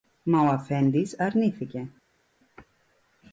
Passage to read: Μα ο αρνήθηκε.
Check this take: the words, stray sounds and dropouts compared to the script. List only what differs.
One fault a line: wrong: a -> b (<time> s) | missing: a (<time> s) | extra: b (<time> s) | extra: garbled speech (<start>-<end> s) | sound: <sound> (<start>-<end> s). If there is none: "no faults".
extra: αφέντης (0.5 s)